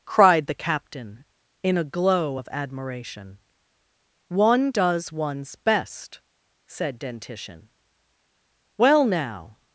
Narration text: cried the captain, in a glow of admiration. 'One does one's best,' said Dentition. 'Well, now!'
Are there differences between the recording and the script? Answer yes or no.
no